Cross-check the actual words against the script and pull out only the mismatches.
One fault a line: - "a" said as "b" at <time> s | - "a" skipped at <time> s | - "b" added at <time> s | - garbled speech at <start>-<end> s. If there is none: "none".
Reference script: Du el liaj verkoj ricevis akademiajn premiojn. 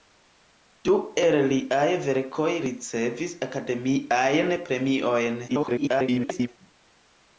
- garbled speech at 5.5-6.5 s